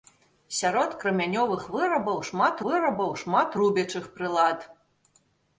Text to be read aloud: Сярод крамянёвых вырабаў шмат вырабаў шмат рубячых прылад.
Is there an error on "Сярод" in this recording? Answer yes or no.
no